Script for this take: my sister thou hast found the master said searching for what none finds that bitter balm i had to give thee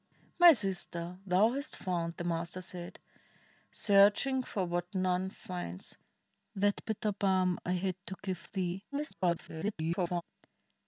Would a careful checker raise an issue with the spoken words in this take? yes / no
yes